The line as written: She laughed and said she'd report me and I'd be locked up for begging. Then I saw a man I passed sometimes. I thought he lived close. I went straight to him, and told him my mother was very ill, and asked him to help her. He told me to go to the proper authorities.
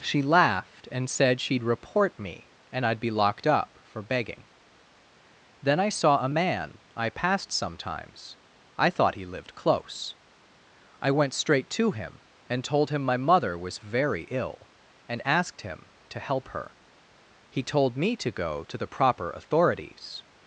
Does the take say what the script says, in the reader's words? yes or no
yes